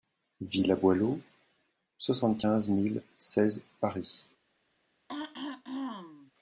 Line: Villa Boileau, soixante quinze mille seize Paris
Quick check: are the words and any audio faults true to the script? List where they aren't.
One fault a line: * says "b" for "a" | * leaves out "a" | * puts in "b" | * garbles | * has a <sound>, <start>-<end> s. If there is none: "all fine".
* has a throat clearing, 5.1-6.3 s